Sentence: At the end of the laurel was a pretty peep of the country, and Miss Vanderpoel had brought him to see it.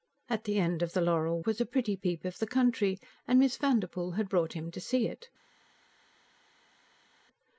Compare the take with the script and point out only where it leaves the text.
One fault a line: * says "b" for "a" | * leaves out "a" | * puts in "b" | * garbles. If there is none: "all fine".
all fine